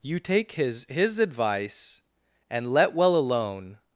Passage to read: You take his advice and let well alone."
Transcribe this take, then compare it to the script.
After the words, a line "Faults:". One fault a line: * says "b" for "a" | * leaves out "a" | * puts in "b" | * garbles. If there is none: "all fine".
You take his his advice and let well alone."
Faults:
* puts in "his"